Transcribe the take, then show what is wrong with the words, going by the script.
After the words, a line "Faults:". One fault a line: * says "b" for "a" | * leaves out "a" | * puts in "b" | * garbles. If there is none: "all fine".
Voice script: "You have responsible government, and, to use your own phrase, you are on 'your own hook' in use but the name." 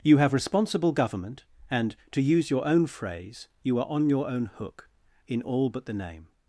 "You have responsible government, and, to use your own phrase, you are on 'your own hook' in all but the name."
Faults:
* says "all" for "use"